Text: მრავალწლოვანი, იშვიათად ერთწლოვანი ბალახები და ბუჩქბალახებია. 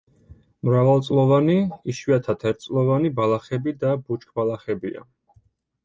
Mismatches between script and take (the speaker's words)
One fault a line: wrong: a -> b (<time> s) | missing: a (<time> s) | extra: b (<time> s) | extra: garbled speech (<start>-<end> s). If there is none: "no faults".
no faults